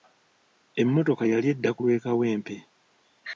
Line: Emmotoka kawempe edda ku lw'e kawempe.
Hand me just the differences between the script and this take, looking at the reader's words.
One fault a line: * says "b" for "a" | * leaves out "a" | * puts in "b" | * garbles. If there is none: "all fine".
* says "yali" for "kawempe"